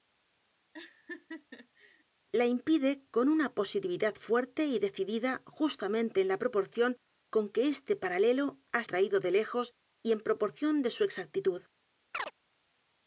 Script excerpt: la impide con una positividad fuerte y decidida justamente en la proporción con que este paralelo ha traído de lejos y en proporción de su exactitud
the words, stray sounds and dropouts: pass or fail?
fail